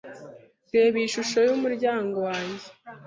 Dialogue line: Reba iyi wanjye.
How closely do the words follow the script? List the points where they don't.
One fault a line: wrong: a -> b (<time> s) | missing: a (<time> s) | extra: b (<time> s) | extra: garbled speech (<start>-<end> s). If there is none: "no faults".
extra: shusho yumuryango (1.1 s)